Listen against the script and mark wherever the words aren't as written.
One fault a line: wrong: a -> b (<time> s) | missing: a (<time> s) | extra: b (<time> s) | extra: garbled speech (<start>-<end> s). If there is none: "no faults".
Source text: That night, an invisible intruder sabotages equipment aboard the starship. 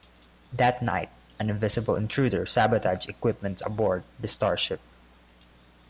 no faults